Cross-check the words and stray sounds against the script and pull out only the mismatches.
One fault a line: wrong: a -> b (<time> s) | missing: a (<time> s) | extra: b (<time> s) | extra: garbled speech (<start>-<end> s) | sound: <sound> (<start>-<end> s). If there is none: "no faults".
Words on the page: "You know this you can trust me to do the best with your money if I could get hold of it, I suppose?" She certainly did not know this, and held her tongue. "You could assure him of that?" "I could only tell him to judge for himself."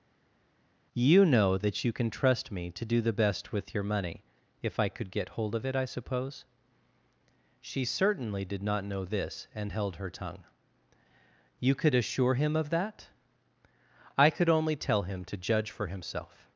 wrong: this -> that (1.6 s)